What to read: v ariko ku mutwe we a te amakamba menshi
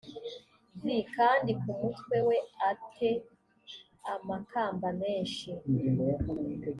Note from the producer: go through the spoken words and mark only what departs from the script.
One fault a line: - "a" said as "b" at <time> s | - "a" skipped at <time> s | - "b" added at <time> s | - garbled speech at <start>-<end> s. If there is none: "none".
- "ariko" said as "kandi" at 1.1 s